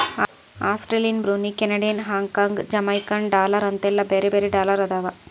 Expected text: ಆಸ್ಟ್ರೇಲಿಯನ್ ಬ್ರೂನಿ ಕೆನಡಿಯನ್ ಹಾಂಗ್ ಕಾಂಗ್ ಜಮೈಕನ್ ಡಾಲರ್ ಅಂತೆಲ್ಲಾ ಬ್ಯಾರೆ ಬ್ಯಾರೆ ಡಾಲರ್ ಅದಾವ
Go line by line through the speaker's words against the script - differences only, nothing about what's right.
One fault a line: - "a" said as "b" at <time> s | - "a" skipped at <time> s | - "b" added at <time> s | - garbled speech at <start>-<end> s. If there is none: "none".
none